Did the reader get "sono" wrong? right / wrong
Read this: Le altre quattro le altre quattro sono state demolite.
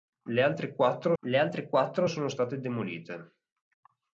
right